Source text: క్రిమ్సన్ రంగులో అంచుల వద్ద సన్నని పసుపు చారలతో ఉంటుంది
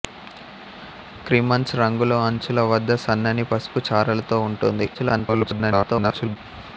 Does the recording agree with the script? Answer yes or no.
no